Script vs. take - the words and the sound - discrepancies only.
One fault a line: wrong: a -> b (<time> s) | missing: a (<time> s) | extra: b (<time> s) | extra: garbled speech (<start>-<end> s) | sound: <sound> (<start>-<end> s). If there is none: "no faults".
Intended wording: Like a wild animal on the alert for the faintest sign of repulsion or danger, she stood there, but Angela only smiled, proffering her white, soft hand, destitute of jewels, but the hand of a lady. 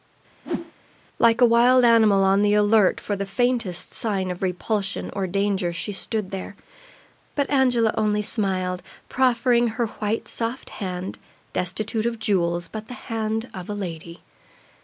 sound: whoosh (0.4-0.7 s)